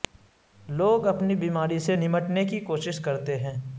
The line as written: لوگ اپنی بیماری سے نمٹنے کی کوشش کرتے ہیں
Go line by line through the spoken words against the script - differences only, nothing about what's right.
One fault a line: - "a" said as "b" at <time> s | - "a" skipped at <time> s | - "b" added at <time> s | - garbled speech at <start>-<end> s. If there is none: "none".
none